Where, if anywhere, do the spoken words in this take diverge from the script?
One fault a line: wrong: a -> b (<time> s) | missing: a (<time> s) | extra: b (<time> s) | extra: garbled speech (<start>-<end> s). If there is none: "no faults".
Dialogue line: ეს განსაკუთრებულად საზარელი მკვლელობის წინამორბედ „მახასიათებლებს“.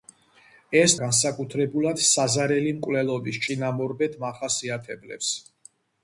no faults